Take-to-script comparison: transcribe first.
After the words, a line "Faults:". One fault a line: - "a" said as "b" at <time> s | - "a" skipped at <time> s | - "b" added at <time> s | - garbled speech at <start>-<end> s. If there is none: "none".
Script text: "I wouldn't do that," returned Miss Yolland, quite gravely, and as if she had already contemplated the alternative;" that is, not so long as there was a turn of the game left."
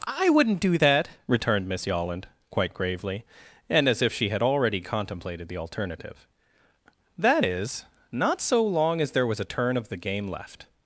"I wouldn't do that," returned Miss Yolland, quite gravely, and as if she had already contemplated the alternative;" that is, not so long as there was a turn of the game left."
Faults:
none